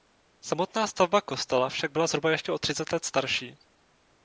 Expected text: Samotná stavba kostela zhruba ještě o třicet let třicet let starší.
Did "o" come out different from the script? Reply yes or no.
no